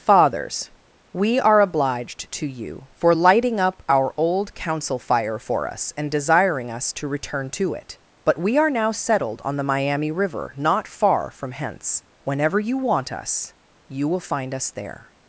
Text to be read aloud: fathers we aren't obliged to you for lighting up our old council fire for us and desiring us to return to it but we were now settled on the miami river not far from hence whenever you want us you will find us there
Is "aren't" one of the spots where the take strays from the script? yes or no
yes